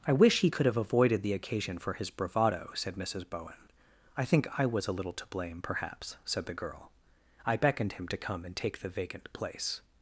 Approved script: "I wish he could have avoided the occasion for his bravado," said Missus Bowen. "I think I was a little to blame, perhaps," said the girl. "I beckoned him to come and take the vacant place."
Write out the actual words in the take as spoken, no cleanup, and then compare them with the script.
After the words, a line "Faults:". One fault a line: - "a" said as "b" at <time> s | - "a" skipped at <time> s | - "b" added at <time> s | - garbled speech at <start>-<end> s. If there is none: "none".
"I wish he could have avoided the occasion for his bravado," said Missus Bowen. "I think I was a little to blame, perhaps," said the girl. "I beckoned him to come and take the vacant place."
Faults:
none